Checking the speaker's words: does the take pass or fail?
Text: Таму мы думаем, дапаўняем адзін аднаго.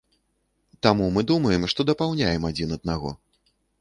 fail